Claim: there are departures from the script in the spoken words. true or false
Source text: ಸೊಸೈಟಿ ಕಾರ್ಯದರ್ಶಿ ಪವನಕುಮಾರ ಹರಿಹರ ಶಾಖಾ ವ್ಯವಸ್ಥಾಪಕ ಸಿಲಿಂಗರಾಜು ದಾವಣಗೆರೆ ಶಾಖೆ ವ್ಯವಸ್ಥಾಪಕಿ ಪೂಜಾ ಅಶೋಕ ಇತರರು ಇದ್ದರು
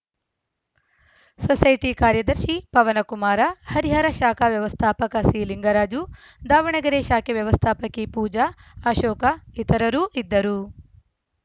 false